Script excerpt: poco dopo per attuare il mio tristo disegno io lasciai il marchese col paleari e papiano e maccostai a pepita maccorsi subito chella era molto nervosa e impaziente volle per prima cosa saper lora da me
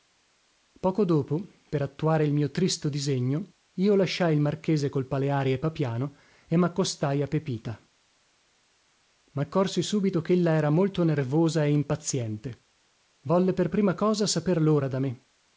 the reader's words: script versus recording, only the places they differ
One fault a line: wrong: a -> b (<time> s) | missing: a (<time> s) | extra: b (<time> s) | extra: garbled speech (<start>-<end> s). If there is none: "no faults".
no faults